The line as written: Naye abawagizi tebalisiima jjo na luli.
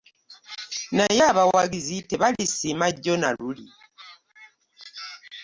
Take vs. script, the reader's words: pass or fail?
pass